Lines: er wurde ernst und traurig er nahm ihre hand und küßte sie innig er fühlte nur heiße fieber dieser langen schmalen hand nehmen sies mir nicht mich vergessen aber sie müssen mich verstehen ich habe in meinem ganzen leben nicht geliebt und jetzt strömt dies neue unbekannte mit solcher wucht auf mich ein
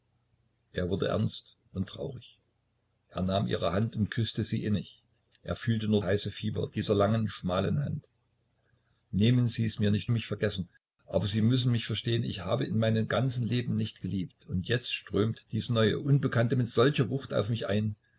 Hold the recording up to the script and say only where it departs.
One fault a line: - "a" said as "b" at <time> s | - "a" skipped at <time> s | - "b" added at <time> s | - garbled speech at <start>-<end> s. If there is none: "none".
none